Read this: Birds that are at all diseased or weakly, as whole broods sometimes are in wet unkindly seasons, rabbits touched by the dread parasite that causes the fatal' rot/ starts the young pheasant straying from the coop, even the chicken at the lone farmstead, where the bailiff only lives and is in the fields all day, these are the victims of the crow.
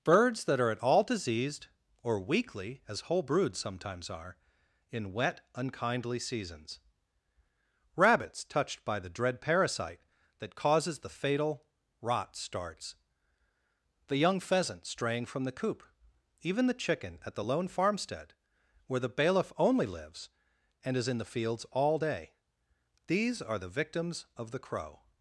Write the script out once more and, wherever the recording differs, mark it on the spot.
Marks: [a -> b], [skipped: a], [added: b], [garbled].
Birds that are at all diseased or weakly, as whole broods sometimes are in wet unkindly seasons, rabbits touched by the dread parasite that causes the fatal' rot/ starts the young pheasant straying from the coop, even the chicken at the lone farmstead, where the bailiff only lives and is in the fields all day, these are the victims of the crow.